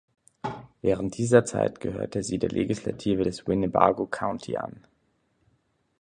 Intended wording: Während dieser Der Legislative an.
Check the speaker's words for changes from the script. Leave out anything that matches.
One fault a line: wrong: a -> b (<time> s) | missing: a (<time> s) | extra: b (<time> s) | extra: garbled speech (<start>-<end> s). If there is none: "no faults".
extra: Zeit gehörte sie (1.4 s)
extra: des Winnebago County (3.2 s)